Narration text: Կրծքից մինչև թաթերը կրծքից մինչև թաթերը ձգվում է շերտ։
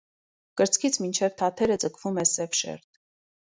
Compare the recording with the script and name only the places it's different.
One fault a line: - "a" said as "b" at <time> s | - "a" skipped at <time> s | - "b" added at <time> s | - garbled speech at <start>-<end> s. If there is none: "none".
- "կրծքից մինչև թաթերը" skipped at 1.8 s
- "սև" added at 2.3 s